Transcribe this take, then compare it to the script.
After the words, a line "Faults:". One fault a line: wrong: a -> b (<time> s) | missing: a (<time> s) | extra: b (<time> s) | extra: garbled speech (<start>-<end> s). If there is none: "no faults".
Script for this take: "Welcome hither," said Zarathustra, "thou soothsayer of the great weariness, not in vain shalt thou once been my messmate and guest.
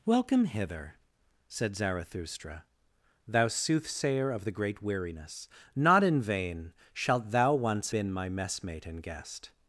"Welcome hither," said Zarathustra, "thou soothsayer of the great weariness, not in vain shalt thou once been my messmate and guest.
Faults:
no faults